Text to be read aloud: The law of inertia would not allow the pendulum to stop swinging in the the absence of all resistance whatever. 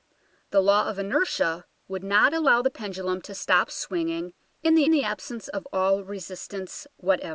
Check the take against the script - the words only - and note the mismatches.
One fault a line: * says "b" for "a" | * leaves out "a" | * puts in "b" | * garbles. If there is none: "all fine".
all fine